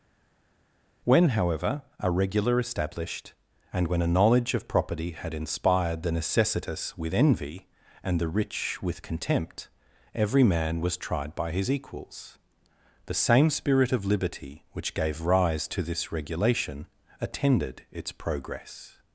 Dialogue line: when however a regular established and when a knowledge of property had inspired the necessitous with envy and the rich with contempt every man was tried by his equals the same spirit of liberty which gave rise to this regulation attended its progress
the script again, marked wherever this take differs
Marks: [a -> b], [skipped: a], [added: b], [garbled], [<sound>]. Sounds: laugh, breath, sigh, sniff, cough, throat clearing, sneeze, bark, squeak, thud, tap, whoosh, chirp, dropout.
when however a regular established and when a knowledge of property had inspired the necessitous with envy and the rich with contempt every man was tried by his equals the same spirit of liberty which gave rise to this regulation attended its progress